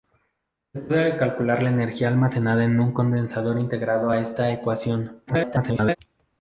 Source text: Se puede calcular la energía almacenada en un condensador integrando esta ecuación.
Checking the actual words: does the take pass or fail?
fail